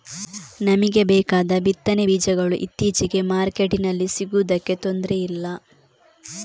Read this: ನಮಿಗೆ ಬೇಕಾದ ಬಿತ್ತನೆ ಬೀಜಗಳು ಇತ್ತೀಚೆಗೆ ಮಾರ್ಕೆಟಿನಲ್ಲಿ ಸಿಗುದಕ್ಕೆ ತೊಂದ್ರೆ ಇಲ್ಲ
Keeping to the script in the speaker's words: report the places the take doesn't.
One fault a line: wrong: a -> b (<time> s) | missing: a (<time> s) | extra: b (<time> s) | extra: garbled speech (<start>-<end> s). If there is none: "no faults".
no faults